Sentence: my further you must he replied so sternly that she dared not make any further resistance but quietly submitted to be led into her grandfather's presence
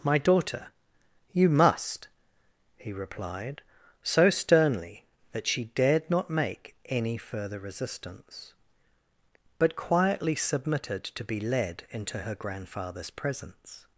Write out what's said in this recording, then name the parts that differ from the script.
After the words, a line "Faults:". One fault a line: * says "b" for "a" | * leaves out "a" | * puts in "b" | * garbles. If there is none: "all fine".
my daughter you must he replied so sternly that she dared not make any further resistance but quietly submitted to be led into her grandfather's presence
Faults:
* says "daughter" for "further"